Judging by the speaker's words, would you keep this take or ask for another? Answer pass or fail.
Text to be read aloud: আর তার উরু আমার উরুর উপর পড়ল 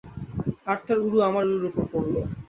pass